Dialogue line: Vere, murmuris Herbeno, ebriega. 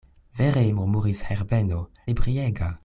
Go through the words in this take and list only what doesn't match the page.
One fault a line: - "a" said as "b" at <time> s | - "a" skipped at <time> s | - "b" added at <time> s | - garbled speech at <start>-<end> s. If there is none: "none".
none